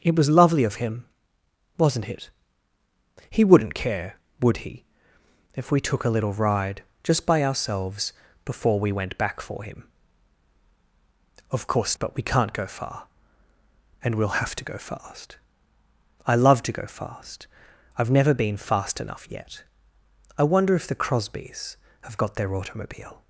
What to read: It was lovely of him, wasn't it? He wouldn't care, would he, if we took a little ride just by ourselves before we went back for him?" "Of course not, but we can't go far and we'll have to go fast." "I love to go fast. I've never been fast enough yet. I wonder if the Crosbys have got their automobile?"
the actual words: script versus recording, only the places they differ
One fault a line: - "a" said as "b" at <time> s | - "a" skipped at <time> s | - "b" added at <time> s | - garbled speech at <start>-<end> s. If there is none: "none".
- "not" skipped at 12.0 s